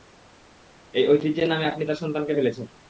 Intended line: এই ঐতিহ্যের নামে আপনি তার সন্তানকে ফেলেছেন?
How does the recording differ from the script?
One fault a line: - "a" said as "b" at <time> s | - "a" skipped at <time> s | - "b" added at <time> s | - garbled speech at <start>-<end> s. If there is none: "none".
none